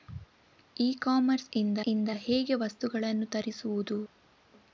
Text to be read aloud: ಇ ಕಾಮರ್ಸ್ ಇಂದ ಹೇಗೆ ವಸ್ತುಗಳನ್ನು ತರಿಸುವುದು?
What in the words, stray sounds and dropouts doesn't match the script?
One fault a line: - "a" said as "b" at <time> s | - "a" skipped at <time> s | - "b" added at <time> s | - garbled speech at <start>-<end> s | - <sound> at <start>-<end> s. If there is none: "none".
- "ಇಂದ" added at 1.8 s